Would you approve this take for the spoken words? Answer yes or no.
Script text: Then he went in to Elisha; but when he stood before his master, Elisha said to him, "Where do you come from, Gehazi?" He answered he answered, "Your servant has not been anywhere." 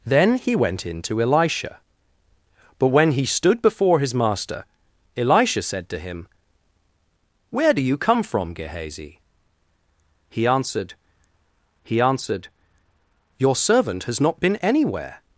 yes